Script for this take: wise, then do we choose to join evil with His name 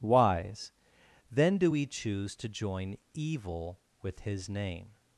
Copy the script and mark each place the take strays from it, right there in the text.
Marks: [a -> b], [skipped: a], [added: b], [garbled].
wise, then do we choose to join evil with His name